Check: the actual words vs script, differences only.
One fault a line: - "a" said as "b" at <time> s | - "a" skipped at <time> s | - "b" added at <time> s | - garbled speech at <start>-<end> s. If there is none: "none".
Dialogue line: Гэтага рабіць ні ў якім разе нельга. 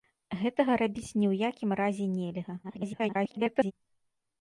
- garbled speech at 2.6-3.7 s